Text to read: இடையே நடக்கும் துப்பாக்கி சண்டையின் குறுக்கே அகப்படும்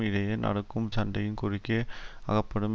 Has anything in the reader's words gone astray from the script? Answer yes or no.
yes